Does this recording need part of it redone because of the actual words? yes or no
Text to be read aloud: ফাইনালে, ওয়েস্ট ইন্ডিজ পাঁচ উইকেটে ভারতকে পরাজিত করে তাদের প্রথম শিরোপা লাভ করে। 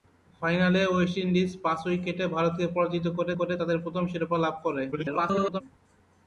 yes